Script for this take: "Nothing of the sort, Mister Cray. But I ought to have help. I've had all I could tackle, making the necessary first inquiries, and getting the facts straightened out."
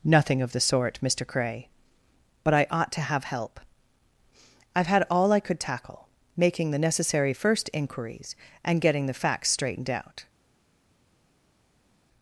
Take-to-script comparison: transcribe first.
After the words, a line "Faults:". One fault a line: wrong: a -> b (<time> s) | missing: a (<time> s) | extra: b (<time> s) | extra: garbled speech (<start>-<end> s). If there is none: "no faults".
"Nothing of the sort, Mister Cray. But I ought to have help. I've had all I could tackle, making the necessary first inquiries, and getting the facts straightened out."
Faults:
no faults